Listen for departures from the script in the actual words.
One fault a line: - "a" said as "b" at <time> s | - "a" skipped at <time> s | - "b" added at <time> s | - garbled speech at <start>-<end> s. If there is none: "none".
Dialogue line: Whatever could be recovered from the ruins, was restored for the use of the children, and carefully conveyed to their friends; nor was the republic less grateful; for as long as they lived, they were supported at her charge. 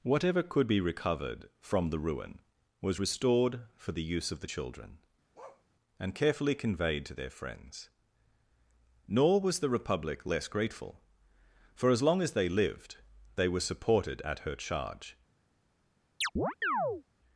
- "ruins" said as "ruin" at 2.0 s